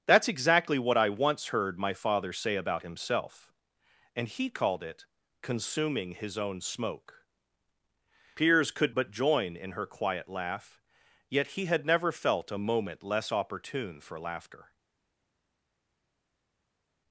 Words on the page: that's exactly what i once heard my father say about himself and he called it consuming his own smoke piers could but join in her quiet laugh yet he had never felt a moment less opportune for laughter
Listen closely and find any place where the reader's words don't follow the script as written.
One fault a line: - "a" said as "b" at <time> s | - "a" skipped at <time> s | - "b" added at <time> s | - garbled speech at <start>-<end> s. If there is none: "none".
none